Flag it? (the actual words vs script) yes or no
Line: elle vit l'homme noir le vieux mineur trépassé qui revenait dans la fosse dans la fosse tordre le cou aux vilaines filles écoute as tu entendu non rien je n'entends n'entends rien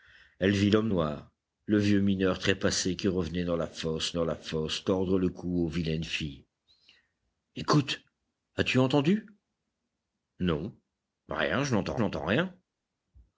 no